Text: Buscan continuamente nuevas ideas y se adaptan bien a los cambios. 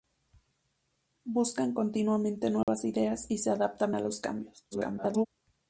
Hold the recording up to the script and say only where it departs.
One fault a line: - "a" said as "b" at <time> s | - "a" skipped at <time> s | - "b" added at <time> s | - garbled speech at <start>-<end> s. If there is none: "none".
- "bien" skipped at 3.9 s
- garbled speech at 4.7-5.3 s